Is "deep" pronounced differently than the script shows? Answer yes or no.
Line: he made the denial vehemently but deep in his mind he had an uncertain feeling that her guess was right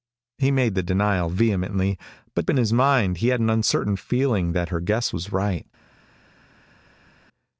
yes